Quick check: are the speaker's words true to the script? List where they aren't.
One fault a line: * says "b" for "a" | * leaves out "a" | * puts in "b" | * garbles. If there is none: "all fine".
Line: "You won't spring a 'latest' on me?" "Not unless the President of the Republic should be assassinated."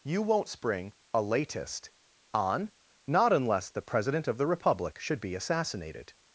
* leaves out "me"